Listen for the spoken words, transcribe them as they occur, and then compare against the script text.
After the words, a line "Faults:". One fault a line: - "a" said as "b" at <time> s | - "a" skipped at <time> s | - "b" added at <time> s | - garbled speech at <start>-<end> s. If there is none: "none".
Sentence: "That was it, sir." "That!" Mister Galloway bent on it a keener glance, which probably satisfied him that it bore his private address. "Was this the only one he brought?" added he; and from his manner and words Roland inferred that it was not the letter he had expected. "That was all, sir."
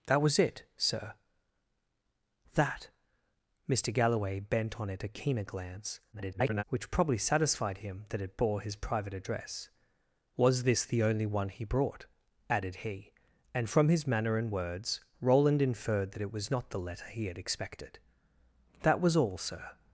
"That was it, sir." "That!" Mister Galloway bent on it a keener glance, [garbled] which probably satisfied him that it bore his private address. "Was this the only one he brought?" added he; and from his manner and words Roland inferred that it was not the letter he had expected. "That was all, sir."
Faults:
- garbled speech at 6.1-6.6 s